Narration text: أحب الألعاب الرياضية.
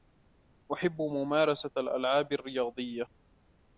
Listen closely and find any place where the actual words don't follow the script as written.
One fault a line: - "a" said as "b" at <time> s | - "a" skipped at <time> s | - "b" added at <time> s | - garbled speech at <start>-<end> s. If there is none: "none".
- "ممارسة" added at 1.0 s